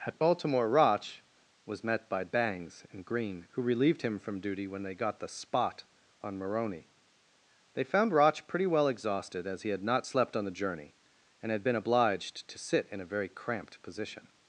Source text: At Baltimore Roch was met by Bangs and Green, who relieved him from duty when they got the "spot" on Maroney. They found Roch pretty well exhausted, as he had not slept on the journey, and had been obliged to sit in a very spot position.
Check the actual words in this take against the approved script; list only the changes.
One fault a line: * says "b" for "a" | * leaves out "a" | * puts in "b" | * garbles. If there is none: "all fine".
* says "cramped" for "spot"